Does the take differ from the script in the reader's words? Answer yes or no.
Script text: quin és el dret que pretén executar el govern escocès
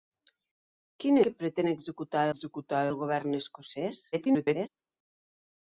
yes